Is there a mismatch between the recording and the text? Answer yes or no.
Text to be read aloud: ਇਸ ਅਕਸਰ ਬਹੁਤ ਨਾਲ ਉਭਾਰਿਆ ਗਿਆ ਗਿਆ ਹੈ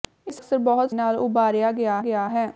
no